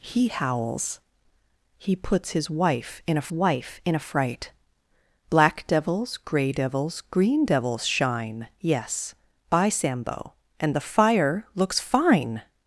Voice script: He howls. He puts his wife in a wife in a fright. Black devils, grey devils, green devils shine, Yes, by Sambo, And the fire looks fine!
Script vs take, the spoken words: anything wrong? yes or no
no